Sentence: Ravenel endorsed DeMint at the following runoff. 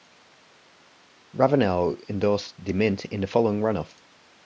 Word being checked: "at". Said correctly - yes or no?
no